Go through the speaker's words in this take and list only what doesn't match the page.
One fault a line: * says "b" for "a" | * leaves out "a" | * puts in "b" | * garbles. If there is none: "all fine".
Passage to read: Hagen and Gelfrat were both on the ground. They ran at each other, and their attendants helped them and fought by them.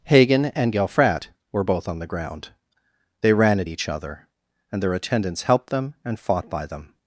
all fine